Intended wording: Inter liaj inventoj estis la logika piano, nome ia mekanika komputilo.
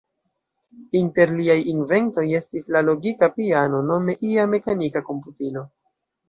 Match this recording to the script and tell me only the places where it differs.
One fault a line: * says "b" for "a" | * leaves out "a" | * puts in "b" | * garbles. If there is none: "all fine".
all fine